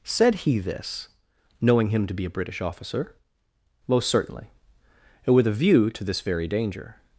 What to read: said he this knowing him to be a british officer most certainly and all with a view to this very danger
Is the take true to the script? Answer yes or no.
no